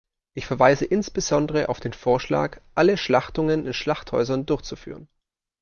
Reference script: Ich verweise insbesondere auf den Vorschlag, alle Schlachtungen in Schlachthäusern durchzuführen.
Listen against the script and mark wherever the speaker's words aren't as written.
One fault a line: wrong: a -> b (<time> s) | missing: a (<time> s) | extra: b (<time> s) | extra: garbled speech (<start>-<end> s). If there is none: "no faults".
no faults